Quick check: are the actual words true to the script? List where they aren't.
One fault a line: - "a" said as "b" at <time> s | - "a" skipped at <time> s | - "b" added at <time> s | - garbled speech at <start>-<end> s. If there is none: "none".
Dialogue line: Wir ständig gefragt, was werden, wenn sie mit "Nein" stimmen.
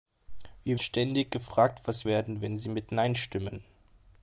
none